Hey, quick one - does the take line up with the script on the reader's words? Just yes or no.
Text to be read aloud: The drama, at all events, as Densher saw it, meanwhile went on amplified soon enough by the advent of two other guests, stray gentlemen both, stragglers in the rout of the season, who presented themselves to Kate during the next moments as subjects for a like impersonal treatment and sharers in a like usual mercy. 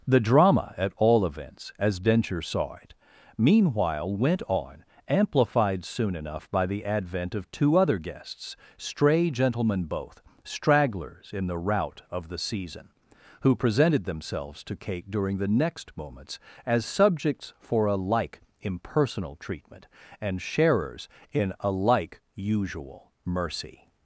yes